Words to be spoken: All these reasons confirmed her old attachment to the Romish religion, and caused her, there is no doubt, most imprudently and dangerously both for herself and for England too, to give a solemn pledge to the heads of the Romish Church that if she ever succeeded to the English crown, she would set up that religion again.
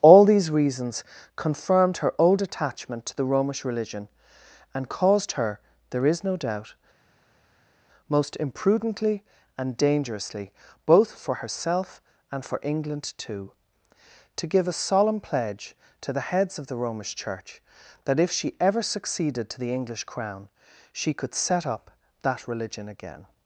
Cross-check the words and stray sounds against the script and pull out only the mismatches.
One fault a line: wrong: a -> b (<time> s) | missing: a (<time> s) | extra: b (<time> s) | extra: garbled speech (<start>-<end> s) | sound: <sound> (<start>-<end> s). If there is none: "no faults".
wrong: would -> could (21.1 s)